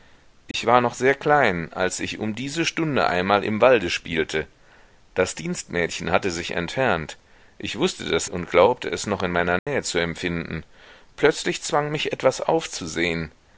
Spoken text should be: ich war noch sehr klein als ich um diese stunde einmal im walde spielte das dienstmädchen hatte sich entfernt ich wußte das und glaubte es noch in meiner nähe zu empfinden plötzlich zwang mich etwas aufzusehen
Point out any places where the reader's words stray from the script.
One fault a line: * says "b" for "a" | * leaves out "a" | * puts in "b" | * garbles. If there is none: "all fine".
all fine